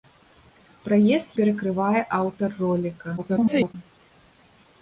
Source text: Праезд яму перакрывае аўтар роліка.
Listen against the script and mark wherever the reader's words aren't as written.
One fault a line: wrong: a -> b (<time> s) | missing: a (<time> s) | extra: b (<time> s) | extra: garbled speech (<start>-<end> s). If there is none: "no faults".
missing: яму (1.4 s)
extra: garbled speech (3.2-3.7 s)